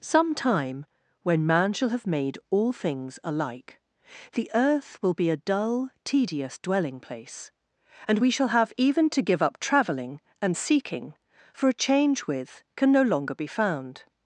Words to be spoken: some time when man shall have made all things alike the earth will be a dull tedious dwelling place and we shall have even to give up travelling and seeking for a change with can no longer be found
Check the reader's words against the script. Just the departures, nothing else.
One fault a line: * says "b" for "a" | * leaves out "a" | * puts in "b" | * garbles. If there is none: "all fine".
all fine